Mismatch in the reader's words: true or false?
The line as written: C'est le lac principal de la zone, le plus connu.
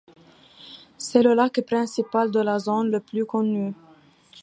false